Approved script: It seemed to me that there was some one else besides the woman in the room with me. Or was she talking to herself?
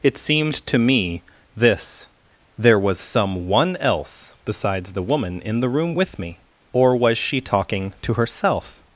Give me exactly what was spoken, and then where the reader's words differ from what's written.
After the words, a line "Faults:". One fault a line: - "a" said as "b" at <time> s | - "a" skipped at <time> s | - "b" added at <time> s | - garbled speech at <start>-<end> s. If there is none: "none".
It seemed to me this there was some one else besides the woman in the room with me. Or was she talking to herself?
Faults:
- "that" said as "this" at 1.6 s